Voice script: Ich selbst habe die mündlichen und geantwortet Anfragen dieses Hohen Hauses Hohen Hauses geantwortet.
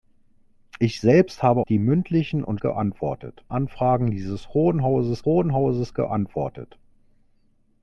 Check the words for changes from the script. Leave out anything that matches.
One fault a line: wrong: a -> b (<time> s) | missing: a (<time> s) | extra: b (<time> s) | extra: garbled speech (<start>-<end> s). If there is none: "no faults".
no faults